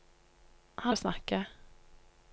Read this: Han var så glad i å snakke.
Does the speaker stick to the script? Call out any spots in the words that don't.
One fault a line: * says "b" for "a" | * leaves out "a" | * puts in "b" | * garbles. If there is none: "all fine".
* leaves out "var så glad"